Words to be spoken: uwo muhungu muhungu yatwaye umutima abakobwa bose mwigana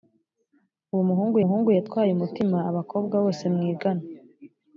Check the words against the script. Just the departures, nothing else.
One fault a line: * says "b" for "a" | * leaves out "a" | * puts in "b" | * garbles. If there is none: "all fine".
all fine